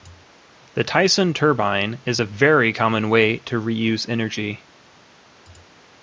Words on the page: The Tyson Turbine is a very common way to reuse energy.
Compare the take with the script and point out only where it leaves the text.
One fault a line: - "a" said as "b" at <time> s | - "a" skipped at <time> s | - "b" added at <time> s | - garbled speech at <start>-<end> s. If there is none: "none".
none